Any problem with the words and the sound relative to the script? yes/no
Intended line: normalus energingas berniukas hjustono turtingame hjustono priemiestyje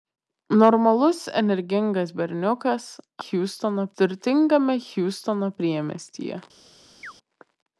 yes